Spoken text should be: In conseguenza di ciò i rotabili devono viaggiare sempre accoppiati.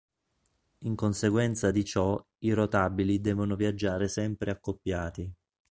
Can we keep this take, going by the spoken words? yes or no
yes